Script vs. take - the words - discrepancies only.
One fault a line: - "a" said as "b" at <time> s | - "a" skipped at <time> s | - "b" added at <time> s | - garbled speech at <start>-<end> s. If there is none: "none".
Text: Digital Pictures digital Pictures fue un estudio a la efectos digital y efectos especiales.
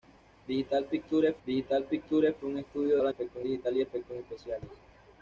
none